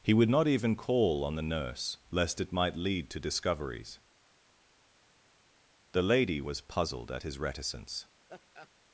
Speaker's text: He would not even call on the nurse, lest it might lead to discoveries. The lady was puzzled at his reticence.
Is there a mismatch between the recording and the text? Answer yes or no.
no